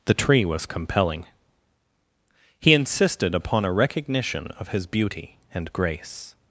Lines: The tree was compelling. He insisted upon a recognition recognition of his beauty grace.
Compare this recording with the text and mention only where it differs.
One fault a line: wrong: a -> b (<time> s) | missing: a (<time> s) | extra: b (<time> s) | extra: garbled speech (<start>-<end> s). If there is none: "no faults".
missing: recognition (4.5 s)
extra: and (5.5 s)